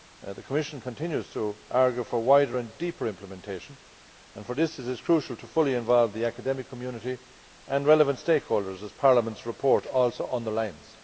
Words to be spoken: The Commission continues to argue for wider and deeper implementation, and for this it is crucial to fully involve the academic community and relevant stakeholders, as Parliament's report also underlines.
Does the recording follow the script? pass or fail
pass